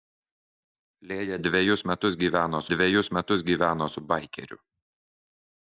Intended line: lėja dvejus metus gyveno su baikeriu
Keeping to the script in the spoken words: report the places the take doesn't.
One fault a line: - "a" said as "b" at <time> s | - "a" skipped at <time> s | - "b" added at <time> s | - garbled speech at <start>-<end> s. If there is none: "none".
- "dvejus metus gyveno" added at 2.8 s